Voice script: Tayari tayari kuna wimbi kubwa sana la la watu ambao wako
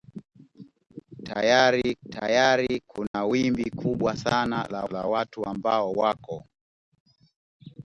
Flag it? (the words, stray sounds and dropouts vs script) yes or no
yes